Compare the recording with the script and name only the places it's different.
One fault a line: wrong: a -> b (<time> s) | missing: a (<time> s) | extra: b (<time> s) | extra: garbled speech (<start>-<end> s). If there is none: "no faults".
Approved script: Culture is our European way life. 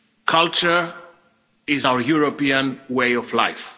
extra: of (3.1 s)